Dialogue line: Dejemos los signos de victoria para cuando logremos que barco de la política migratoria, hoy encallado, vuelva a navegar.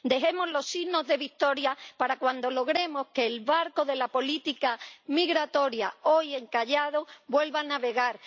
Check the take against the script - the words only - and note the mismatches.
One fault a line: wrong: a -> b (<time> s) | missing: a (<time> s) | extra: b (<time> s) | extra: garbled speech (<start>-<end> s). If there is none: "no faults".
extra: el (3.2 s)